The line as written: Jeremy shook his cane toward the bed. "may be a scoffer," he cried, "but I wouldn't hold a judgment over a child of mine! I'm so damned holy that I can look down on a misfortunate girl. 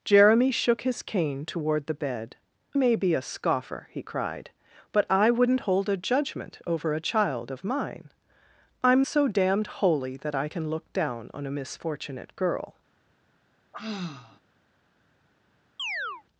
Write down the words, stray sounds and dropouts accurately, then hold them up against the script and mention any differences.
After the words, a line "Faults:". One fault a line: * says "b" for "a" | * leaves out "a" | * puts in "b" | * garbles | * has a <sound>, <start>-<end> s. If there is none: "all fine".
Jeremy shook his cane toward the bed. "may be a scoffer," he cried, "but I wouldn't hold a judgment over a child of mine! I'm so damned holy that I can look down on a misfortunate girl.
Faults:
* has a sigh, 13.7-14.4 s
* has a chirp, 15.8-16.2 s